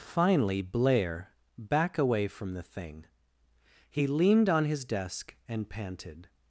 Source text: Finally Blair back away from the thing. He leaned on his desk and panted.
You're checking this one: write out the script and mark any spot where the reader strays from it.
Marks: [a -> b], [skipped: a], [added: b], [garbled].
Finally Blair back away from the thing. He leaned on his desk and panted.